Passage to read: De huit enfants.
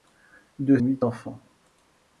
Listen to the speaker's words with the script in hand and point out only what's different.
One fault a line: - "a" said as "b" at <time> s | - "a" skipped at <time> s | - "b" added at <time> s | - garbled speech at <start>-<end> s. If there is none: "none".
none